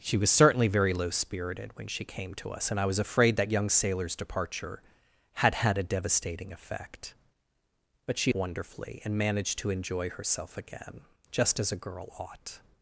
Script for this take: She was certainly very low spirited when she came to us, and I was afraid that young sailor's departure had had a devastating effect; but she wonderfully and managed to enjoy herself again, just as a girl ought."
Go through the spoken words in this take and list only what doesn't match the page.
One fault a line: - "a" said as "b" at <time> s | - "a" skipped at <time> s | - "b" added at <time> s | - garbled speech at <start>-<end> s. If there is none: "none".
none